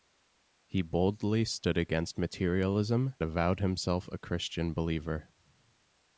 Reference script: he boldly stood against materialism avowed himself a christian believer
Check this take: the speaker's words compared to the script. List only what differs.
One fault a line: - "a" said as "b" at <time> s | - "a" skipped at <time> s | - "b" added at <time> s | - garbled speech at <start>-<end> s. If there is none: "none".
none